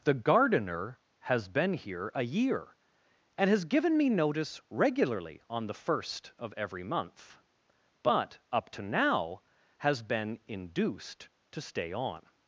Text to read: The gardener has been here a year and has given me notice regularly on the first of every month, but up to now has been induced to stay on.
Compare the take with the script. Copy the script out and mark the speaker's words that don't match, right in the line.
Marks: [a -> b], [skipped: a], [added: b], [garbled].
The gardener has been here a year and has given me notice regularly on the first of every month, but up to now has been induced to stay on.